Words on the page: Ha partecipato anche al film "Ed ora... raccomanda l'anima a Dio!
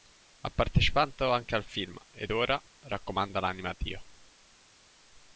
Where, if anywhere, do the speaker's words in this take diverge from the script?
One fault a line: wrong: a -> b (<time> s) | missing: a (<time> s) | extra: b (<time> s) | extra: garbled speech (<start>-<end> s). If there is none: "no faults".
no faults